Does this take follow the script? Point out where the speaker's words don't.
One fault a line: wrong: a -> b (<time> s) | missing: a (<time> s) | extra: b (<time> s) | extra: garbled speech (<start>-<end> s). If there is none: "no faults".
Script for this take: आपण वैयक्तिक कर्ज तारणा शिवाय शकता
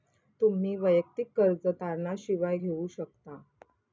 wrong: आपण -> तुम्ही (0.4 s)
extra: घेऊ (2.5 s)